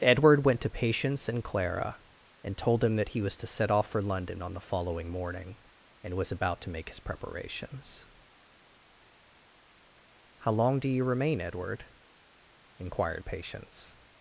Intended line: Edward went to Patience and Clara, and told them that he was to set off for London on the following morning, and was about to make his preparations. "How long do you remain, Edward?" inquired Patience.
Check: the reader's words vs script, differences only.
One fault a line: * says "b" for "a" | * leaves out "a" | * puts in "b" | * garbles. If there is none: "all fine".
all fine